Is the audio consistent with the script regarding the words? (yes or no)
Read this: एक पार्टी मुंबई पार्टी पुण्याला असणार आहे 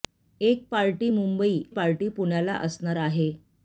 yes